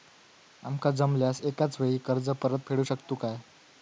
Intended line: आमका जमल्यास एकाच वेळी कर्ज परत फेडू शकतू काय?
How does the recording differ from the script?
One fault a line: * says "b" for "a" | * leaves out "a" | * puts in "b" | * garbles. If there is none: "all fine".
all fine